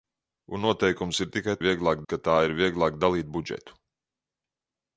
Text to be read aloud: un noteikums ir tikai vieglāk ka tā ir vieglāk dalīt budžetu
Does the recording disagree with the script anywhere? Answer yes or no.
no